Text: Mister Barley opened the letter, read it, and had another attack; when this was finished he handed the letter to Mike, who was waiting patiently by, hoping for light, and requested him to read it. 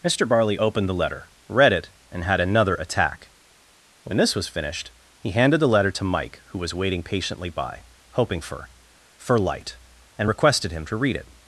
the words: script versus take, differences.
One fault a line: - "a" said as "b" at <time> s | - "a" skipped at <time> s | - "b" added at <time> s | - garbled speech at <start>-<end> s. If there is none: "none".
- "for" added at 9.2 s